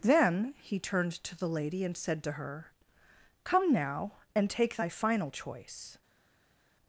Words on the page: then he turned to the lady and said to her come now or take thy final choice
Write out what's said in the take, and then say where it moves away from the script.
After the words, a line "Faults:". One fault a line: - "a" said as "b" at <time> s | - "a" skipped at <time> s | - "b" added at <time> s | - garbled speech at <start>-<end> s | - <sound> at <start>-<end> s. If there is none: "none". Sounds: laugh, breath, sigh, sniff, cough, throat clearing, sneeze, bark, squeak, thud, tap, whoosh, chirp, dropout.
then he turned to the lady and said to her come now and take thy final choice
Faults:
- "or" said as "and" at 4.3 s